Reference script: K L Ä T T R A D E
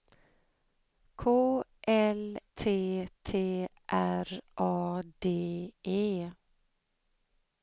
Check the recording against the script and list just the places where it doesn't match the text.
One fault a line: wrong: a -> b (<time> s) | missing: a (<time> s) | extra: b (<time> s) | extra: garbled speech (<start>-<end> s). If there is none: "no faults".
missing: Ä (2.2 s)